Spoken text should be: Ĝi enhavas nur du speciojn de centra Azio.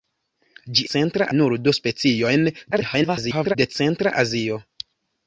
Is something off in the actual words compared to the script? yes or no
yes